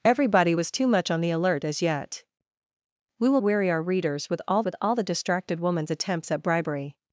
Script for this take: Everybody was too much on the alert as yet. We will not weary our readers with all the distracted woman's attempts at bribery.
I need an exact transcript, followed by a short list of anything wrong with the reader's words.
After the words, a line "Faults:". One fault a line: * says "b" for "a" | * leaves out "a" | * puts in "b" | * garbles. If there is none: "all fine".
Everybody was too much on the alert as yet. We will weary our readers with all with all the distracted woman's attempts at bribery.
Faults:
* leaves out "not"
* puts in "with all"